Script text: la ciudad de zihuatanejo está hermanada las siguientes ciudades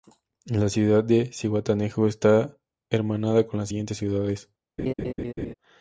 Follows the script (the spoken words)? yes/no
no